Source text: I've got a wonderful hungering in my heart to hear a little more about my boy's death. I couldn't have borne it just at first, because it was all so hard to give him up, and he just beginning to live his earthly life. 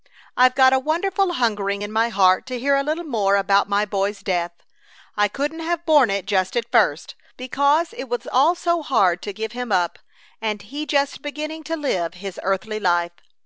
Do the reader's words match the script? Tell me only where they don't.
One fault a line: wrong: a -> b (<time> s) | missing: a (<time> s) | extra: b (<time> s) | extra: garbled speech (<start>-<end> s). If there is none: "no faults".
no faults